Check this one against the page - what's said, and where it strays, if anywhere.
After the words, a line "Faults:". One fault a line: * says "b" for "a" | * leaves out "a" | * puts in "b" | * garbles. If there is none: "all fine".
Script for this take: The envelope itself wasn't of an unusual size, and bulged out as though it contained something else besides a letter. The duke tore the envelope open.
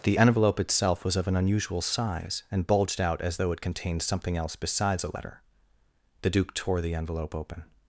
The envelope itself was of an unusual size, and bulged out as though it contained something else besides a letter. The duke tore the envelope open.
Faults:
* says "was" for "wasn't"